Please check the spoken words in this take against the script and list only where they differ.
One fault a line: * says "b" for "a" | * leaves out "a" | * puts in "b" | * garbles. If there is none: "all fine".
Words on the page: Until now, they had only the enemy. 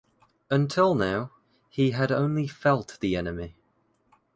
* says "he" for "they"
* puts in "felt"